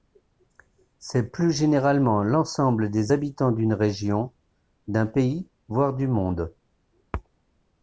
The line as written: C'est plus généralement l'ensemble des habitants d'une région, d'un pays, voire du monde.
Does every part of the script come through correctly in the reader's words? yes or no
yes